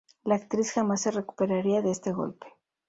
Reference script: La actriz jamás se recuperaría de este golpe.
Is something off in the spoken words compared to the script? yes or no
no